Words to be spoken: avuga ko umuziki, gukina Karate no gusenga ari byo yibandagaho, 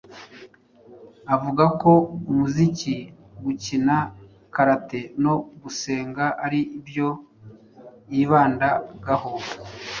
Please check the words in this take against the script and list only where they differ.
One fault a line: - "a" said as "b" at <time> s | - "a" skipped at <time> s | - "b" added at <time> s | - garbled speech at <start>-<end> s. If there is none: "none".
none